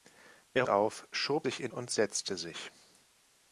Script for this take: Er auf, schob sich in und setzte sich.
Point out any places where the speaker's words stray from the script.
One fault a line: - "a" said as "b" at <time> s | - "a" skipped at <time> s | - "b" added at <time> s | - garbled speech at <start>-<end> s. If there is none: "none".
none